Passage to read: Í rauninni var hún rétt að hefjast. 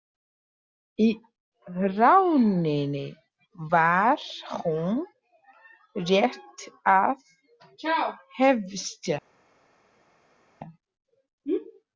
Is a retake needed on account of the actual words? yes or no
no